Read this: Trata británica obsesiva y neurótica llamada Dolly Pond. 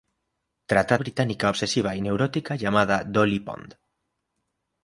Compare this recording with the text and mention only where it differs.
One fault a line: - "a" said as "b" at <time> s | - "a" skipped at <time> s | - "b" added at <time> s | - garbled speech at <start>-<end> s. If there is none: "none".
none